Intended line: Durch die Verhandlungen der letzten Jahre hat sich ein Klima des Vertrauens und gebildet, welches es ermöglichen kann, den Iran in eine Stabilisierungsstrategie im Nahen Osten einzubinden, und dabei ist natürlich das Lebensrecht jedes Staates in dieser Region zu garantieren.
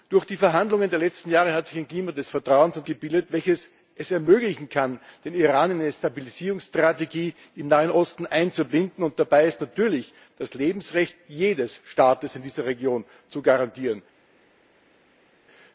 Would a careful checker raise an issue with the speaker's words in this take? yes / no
no